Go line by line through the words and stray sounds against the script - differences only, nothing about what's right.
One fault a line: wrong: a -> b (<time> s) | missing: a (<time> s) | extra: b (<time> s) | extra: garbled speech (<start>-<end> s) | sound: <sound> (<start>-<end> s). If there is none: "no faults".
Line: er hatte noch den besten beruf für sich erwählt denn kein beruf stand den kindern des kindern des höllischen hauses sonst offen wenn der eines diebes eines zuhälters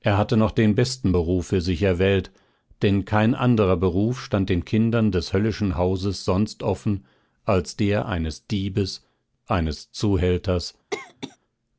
extra: anderer (3.3 s)
missing: kindern des (5.3 s)
wrong: wenn -> als (7.4 s)
sound: cough (10.9-11.4 s)